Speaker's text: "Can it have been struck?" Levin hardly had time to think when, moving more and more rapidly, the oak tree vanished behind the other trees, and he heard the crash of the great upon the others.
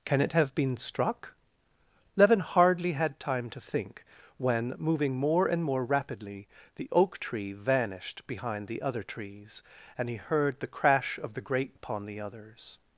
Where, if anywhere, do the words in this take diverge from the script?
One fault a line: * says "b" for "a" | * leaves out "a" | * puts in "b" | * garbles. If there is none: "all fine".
all fine